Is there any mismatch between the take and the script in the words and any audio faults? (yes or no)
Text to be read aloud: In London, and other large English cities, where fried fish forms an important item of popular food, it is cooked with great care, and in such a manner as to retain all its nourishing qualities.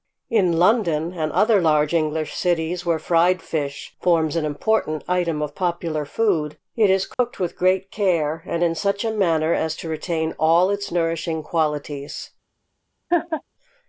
yes